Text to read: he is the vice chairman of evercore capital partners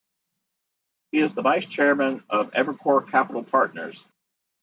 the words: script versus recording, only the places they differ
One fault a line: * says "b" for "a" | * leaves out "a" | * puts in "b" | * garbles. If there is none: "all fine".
all fine